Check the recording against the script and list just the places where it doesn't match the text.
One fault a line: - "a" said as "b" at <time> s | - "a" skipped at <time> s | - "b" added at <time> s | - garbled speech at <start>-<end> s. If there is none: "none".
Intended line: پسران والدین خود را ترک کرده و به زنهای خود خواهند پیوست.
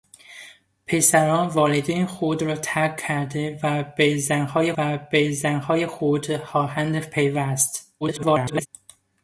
- "و به زنهای" added at 4.8 s
- garbled speech at 8.0-8.7 s